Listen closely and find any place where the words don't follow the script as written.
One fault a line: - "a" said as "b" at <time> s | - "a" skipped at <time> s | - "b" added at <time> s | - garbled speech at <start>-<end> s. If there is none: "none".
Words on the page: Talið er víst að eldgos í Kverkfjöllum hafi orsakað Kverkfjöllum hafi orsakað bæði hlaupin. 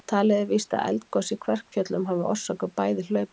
- "Kverkfjöllum hafi orsakað" skipped at 2.7 s